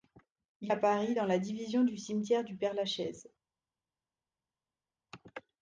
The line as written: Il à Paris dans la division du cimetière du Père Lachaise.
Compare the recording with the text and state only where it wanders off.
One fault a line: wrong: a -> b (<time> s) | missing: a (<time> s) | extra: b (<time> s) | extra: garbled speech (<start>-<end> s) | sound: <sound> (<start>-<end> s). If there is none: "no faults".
no faults